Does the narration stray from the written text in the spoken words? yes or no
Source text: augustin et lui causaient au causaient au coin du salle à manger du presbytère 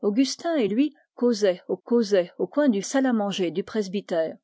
no